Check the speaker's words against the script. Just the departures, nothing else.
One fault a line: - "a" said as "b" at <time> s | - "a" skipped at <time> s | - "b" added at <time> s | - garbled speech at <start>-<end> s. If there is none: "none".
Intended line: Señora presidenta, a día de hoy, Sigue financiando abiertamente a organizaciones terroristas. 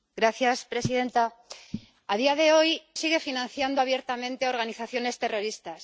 none